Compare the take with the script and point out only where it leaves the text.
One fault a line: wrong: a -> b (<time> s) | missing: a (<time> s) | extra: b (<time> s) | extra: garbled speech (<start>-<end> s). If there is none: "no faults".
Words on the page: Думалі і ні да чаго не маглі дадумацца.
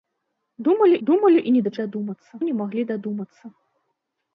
extra: думалі (1.1 s)
wrong: чаго -> дадумацца (1.8 s)